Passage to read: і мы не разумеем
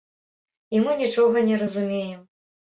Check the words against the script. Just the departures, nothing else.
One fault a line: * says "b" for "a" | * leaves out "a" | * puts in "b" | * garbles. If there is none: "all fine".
* puts in "нічога"